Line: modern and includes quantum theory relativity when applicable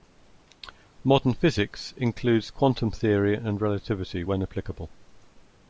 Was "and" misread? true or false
true